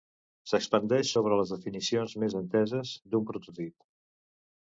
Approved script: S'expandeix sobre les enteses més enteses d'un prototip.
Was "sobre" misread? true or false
false